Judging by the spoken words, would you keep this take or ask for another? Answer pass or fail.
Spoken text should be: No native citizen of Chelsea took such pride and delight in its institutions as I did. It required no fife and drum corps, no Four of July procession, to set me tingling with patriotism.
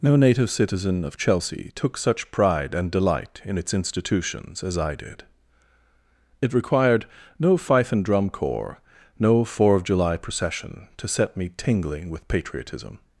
pass